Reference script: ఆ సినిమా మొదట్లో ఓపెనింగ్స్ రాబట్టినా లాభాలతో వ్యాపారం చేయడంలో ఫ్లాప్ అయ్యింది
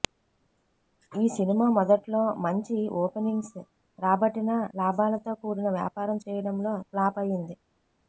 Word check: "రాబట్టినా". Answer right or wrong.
right